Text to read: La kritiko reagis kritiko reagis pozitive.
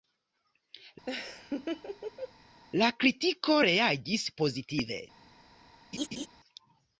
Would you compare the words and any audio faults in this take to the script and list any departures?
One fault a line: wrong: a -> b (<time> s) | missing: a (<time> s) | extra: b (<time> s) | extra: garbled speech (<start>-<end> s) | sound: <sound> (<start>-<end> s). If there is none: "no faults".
sound: laugh (1.1-2.3 s)
missing: kritiko reagis (4.3 s)
sound: laugh (5.9-6.3 s)